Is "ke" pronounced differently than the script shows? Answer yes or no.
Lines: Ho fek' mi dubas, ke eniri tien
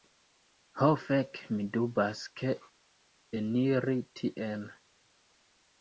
no